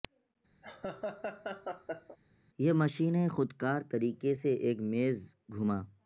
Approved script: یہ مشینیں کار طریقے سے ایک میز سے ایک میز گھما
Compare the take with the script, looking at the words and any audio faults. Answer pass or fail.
fail